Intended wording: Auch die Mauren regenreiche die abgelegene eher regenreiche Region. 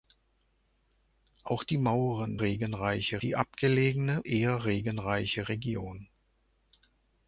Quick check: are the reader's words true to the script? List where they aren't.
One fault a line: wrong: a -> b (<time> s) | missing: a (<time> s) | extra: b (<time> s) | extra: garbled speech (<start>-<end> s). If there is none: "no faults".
no faults